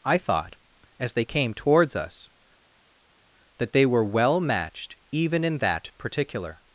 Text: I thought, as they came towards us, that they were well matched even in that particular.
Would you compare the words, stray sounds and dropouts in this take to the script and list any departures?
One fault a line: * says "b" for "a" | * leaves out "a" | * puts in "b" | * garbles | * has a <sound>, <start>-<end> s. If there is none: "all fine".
all fine